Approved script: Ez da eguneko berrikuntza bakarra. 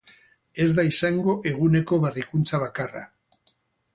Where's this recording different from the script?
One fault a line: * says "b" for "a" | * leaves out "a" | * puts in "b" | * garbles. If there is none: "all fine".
* puts in "izango"